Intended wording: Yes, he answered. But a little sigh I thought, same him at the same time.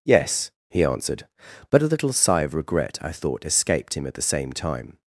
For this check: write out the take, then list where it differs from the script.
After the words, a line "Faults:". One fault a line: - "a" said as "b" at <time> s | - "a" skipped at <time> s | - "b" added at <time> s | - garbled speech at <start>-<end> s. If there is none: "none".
Yes, he answered. But a little sigh of regret, I thought, escaped him at the same time.
Faults:
- "of regret" added at 2.4 s
- "same" said as "escaped" at 3.4 s